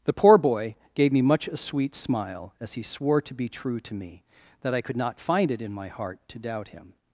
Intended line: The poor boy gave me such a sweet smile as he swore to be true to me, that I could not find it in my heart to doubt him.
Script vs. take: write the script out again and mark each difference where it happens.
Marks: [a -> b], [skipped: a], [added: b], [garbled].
The poor boy gave me [such -> much] a sweet smile as he swore to be true to me, that I could not find it in my heart to doubt him.